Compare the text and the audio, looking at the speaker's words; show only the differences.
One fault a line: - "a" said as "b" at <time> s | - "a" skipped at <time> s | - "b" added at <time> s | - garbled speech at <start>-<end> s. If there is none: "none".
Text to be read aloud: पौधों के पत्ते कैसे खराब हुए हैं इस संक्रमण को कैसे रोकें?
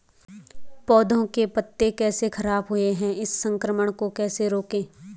none